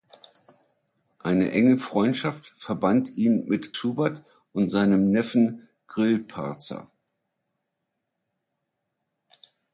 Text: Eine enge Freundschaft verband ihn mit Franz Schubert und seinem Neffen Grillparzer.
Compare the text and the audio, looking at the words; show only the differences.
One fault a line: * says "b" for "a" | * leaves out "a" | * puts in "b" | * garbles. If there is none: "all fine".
* leaves out "Franz"